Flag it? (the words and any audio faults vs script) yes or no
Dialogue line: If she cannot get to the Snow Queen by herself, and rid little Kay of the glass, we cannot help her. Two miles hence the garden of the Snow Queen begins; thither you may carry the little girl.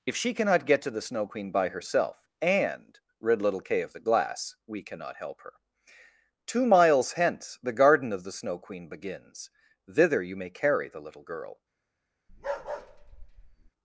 yes